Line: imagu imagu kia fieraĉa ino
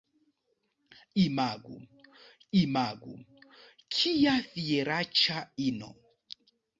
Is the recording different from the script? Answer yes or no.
no